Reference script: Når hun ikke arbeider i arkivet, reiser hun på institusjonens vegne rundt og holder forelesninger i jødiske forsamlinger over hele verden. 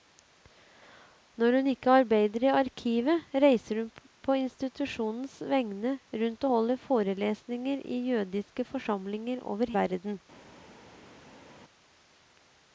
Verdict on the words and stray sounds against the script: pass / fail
fail